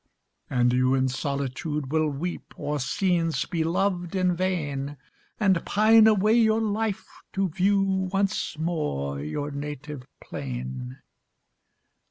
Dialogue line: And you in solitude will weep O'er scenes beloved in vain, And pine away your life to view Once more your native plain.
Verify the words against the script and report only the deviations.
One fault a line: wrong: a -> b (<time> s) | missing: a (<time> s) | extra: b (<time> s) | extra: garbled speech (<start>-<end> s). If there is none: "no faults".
no faults